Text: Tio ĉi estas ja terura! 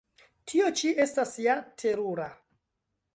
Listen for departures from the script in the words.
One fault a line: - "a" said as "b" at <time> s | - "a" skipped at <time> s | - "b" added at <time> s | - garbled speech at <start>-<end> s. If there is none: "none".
none